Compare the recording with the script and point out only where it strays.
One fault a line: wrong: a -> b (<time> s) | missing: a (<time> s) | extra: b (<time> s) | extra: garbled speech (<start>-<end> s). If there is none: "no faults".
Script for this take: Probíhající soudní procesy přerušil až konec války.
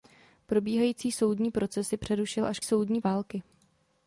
wrong: konec -> soudní (2.6 s)